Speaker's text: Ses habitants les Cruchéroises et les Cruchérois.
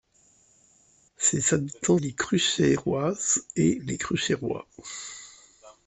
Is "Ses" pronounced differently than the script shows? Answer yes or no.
no